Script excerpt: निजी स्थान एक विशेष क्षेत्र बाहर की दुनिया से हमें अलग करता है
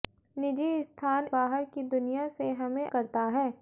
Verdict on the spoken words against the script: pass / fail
fail